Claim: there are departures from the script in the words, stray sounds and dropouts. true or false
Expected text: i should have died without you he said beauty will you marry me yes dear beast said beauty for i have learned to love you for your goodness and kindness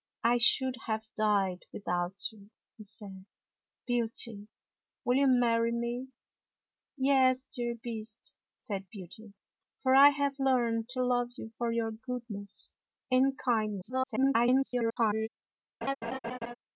true